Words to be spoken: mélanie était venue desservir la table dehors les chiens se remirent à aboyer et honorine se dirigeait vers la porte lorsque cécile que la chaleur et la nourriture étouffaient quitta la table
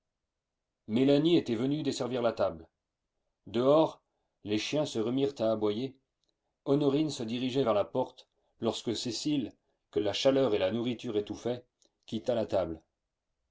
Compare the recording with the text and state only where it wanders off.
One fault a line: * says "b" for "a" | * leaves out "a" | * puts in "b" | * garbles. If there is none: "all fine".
* leaves out "et"